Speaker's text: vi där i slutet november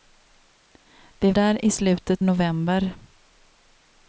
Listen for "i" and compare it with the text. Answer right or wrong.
right